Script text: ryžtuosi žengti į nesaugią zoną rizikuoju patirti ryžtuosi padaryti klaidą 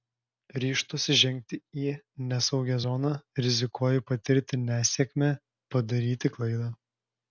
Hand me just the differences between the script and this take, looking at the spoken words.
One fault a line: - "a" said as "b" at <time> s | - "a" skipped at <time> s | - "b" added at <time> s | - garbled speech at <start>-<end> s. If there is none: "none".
- "ryžtuosi" said as "nesėkmę" at 4.6 s